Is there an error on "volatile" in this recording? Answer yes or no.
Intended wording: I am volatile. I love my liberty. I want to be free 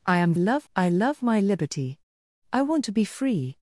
yes